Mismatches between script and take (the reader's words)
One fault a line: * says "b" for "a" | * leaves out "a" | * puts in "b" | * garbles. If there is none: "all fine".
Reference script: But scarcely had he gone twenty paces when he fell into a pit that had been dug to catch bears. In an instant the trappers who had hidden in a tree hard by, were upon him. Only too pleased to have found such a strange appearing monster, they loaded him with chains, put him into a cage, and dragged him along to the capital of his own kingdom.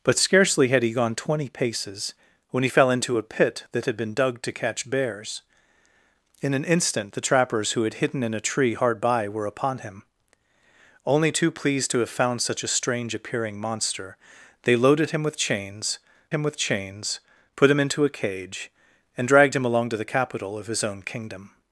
* puts in "him with chains"